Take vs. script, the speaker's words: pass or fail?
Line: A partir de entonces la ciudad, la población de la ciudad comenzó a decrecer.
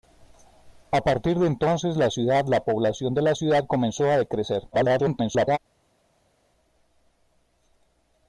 fail